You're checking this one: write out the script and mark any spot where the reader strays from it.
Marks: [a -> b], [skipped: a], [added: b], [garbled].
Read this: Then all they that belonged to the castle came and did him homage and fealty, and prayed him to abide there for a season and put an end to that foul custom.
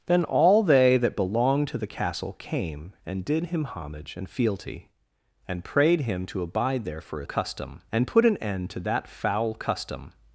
Then all they that belonged to the castle came and did him homage and fealty, and prayed him to abide there for a [season -> custom] and put an end to that foul custom.